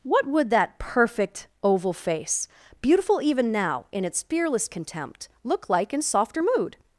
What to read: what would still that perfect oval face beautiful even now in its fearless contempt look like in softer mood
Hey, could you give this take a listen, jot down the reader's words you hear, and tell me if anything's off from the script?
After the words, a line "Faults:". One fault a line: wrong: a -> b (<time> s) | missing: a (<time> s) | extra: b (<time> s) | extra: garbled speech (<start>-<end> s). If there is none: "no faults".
what would that perfect oval face beautiful even now in its fearless contempt look like in softer mood
Faults:
missing: still (0.5 s)